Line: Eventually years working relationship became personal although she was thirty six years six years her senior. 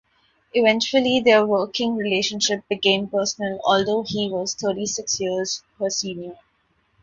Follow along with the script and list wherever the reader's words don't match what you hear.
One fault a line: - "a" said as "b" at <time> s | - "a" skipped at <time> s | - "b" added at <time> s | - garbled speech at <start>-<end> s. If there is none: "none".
- "years" said as "their" at 1.2 s
- "she" said as "he" at 4.1 s
- "six years" skipped at 5.6 s